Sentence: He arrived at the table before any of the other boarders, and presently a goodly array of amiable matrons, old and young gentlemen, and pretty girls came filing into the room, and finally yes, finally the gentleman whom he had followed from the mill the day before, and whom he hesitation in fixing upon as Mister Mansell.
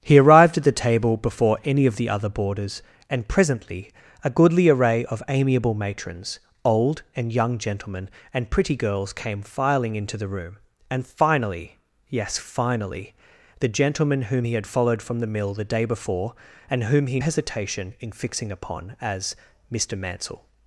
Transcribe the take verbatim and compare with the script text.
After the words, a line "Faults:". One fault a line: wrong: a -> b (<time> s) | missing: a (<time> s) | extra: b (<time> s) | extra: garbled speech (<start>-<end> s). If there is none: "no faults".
He arrived at the table before any of the other boarders, and presently a goodly array of amiable matrons, old and young gentlemen, and pretty girls came filing into the room, and finally yes, finally the gentleman whom he had followed from the mill the day before, and whom he hesitation in fixing upon as Mister Mansell.
Faults:
no faults